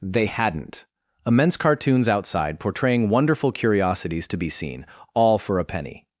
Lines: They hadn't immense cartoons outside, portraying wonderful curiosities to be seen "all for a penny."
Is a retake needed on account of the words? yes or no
no